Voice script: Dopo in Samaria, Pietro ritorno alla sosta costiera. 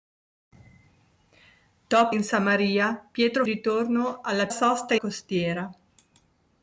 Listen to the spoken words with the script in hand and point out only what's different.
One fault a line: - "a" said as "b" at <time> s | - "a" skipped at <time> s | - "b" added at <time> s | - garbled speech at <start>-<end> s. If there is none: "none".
none